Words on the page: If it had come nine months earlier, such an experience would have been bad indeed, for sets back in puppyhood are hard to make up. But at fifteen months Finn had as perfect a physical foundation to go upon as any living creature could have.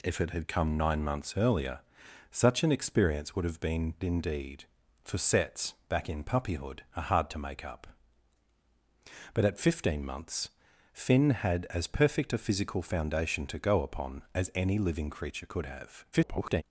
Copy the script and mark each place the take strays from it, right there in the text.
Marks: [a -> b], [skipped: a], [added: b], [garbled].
If it had come nine months earlier, such an experience would have been [skipped: bad] indeed, for sets back in puppyhood are hard to make up. But at fifteen months Finn had as perfect a physical foundation to go upon as any living creature could have. [garbled]